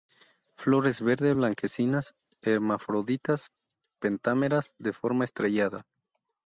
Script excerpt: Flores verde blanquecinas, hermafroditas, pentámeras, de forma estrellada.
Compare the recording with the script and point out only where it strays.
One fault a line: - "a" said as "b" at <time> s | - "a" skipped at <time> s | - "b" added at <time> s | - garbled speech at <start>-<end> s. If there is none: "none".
none